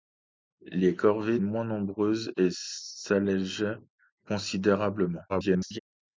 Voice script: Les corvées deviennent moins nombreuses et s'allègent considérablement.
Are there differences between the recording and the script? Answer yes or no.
yes